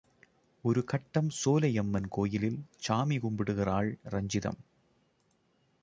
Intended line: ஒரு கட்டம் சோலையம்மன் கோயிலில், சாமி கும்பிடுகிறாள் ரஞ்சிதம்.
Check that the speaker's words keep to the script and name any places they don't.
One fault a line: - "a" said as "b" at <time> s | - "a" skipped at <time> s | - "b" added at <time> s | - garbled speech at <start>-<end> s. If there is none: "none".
none